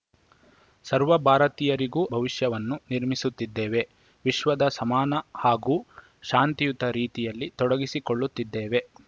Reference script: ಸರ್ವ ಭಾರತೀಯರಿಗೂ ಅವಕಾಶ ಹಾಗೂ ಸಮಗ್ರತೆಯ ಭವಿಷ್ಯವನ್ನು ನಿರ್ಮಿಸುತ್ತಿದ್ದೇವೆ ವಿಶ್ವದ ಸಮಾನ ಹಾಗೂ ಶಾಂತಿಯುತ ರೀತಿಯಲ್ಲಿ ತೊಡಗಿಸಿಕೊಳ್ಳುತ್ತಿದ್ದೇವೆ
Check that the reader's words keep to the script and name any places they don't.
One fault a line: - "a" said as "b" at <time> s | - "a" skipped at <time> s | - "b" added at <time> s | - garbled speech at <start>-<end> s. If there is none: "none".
- "ಅವಕಾಶ ಹಾಗೂ ಸಮಗ್ರತೆಯ" skipped at 2.0 s